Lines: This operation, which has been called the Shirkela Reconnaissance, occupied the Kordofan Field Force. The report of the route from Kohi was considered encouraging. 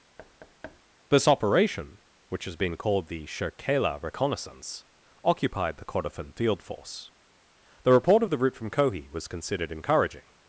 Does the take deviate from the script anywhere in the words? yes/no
no